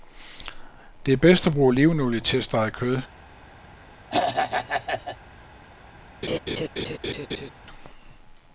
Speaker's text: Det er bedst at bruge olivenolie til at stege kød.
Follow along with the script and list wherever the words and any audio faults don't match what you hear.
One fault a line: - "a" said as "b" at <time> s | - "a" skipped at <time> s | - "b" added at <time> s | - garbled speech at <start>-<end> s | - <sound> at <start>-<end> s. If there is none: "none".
- throat clearing at 4.1-5.2 s
- laugh at 6.2-7.5 s